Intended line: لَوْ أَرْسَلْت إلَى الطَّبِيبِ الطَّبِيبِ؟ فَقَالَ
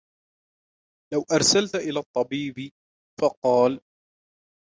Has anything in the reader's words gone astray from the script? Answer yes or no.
yes